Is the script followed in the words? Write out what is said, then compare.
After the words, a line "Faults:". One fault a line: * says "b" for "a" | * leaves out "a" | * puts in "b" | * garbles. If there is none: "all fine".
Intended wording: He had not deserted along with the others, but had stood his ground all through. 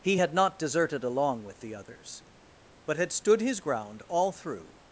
He had not deserted along with the others, but had stood his ground all through.
Faults:
all fine